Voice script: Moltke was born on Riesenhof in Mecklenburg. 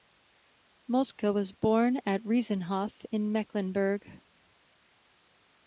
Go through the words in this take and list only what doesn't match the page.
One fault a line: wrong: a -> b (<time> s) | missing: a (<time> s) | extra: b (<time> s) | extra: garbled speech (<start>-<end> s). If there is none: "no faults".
wrong: on -> at (2.1 s)